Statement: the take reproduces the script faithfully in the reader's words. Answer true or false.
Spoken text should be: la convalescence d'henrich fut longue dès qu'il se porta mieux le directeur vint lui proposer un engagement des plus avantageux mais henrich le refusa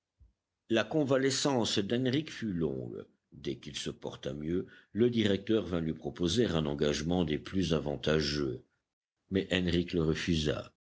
true